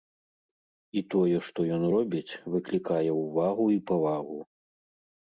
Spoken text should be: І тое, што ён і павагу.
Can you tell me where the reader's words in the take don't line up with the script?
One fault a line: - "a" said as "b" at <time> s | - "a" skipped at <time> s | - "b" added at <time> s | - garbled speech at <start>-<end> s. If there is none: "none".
- "робіць выклікае ўвагу" added at 1.9 s